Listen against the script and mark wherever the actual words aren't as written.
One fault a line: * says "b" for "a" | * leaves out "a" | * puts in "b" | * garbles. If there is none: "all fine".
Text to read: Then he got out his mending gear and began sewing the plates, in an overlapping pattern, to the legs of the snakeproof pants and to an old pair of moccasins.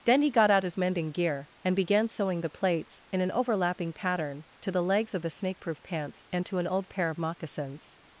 all fine